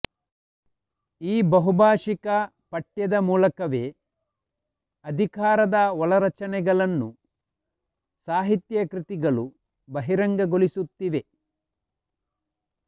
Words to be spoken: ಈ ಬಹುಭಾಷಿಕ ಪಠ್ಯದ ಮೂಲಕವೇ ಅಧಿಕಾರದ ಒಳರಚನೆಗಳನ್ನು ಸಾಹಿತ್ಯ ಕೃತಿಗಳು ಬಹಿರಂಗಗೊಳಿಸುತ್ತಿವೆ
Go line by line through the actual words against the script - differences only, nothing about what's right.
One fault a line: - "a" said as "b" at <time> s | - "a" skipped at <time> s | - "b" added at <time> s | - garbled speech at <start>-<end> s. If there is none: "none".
none